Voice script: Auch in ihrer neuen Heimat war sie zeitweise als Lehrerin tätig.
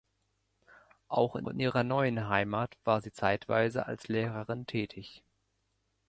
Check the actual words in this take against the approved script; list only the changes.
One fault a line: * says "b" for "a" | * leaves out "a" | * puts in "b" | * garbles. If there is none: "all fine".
* puts in "in"